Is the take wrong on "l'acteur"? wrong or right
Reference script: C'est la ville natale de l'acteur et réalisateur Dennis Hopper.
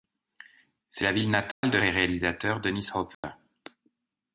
wrong